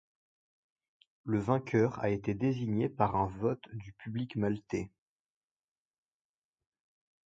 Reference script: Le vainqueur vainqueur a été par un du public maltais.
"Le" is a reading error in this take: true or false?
false